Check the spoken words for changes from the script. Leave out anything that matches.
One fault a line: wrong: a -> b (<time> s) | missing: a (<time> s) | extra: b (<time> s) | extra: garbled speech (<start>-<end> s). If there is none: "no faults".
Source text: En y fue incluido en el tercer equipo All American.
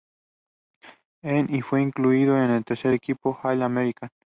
no faults